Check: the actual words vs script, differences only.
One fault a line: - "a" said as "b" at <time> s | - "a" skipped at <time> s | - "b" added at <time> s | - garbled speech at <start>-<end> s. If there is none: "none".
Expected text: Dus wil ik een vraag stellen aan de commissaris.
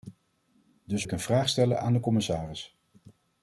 - "wil" skipped at 1.0 s